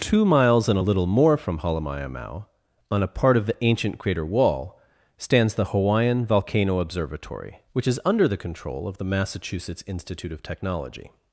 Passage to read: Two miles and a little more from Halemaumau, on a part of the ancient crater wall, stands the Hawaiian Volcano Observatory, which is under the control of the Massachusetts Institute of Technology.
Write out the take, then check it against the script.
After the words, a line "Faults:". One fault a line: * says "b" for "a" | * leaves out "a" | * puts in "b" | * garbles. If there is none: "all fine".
Two miles and a little more from Halemaumau, on a part of the ancient crater wall, stands the Hawaiian Volcano Observatory, which is under the control of the Massachusetts Institute of Technology.
Faults:
all fine